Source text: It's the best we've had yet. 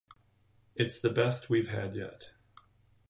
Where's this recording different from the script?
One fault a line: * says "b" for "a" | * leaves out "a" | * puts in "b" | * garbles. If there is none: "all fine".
all fine